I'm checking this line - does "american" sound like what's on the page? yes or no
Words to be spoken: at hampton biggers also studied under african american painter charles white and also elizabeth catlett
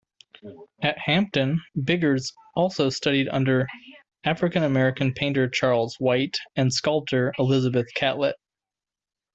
yes